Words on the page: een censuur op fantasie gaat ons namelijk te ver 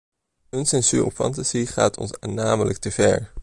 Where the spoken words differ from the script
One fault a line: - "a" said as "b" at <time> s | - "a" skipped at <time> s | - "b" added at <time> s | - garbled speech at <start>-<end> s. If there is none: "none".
none